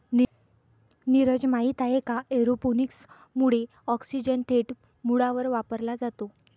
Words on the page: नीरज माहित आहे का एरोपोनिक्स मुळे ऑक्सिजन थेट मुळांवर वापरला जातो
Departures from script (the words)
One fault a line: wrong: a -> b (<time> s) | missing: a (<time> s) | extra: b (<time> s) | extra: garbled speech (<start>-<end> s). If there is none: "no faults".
no faults